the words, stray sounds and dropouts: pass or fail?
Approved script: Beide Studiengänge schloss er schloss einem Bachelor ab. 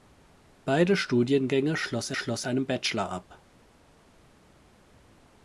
pass